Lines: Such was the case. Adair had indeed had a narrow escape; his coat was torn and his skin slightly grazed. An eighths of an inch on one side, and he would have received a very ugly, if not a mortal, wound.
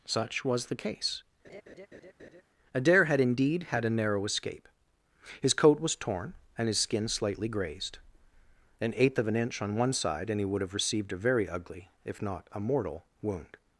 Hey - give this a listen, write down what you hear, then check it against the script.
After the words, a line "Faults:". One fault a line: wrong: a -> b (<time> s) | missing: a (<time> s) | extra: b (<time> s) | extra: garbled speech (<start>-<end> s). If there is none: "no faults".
Such was the case. Adair had indeed had a narrow escape; his coat was torn and his skin slightly grazed. An eighth of an inch on one side, and he would have received a very ugly, if not a mortal, wound.
Faults:
wrong: eighths -> eighth (9.0 s)